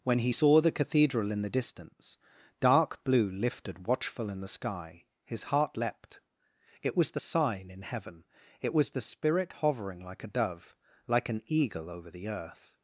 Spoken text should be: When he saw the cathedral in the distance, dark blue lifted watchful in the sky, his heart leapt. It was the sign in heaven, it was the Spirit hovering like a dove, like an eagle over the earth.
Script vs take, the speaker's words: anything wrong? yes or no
no